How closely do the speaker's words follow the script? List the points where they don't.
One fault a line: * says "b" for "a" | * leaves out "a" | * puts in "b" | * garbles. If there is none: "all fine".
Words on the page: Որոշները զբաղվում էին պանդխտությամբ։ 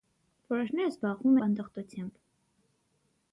* leaves out "էին"